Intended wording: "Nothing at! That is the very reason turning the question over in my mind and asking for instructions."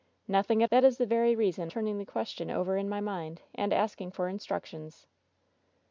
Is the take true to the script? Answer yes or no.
yes